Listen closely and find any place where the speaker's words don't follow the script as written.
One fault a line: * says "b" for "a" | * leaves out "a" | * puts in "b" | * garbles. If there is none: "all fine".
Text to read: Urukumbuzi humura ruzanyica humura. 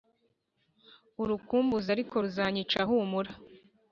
* says "ariko" for "humura"